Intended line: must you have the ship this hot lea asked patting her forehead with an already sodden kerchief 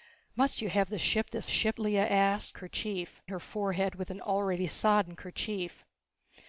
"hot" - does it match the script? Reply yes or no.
no